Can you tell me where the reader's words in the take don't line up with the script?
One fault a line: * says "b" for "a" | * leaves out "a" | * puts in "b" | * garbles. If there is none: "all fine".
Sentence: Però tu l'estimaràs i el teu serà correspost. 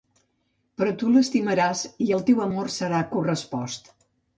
* puts in "amor"